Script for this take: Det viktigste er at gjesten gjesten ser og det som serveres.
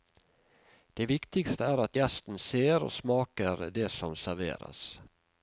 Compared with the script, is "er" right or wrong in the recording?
right